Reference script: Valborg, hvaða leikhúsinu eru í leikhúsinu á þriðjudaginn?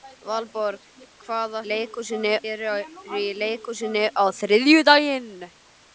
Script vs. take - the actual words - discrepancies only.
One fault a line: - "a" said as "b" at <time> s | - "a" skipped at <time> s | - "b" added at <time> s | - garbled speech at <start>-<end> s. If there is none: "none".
none